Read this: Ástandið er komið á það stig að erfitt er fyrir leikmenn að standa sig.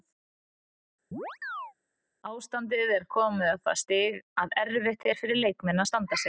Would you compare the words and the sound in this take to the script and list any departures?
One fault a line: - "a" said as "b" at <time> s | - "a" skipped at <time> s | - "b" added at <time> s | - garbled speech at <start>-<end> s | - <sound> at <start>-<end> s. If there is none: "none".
- chirp at 1.1-1.7 s